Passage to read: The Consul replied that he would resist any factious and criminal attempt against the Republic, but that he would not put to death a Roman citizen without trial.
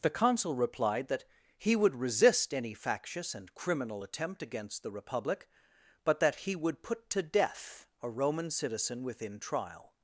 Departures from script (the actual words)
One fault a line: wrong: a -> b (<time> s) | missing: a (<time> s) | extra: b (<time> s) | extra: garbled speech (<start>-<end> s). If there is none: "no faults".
missing: not (6.8 s)
wrong: without -> within (9.0 s)